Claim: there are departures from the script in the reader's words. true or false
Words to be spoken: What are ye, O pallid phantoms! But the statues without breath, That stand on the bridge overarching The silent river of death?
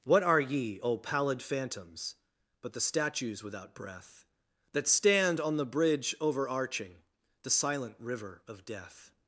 false